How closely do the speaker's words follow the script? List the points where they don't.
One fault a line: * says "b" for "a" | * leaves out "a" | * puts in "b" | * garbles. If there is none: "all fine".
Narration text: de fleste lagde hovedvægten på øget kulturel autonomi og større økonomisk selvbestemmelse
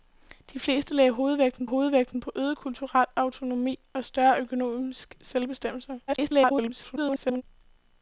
* puts in "hovedvægten"
* garbles